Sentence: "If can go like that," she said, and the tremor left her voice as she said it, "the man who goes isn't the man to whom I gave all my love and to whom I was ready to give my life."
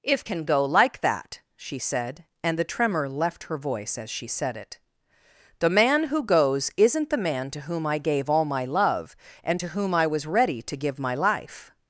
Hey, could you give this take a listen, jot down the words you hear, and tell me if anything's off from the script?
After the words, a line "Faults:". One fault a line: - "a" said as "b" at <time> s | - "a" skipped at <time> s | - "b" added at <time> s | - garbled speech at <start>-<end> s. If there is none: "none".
"If can go like that," she said, and the tremor left her voice as she said it, "the man who goes isn't the man to whom I gave all my love and to whom I was ready to give my life."
Faults:
none